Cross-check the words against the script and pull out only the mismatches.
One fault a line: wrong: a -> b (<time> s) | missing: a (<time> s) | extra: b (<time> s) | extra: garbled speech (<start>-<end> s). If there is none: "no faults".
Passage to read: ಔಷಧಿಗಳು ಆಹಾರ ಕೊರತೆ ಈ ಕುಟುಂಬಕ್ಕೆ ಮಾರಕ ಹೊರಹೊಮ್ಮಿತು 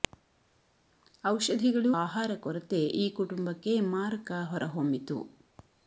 no faults